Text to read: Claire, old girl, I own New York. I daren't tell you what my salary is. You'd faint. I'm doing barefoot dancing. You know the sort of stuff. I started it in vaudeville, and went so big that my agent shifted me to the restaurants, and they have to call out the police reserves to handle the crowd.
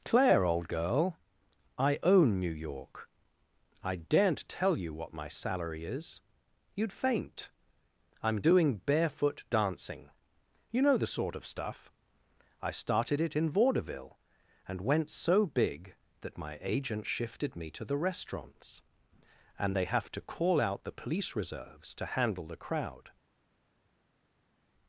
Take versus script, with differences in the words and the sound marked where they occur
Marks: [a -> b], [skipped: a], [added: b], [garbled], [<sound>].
Claire, old girl, I own New York. I daren't tell you what my salary is. You'd faint. I'm doing barefoot dancing. You know the sort of stuff. I started it in vaudeville, and went so big that my agent shifted me to the restaurants, and they have to call out the police reserves to handle the crowd.